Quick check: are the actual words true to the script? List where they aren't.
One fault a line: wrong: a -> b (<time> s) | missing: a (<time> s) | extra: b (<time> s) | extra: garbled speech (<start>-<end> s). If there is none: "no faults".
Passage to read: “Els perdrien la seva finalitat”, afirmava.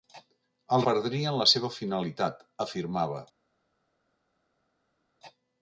no faults